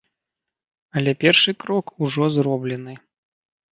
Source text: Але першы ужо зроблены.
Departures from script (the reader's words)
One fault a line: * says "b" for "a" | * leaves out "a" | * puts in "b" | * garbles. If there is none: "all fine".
* puts in "крок"